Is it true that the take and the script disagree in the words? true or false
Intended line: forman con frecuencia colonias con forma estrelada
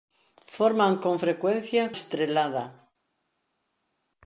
true